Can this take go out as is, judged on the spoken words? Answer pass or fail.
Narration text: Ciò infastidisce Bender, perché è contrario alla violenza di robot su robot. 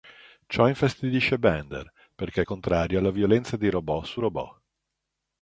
pass